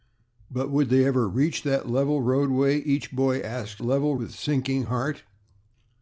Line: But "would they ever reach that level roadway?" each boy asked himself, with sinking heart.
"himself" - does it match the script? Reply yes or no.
no